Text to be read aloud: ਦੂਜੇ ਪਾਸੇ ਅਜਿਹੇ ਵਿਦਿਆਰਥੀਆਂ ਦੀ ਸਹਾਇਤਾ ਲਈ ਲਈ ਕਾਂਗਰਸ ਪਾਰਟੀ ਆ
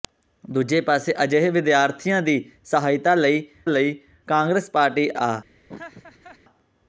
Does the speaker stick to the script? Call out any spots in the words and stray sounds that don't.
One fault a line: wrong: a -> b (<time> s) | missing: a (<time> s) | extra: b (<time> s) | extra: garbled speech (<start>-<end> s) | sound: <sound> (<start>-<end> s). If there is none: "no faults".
sound: laugh (5.7-6.4 s)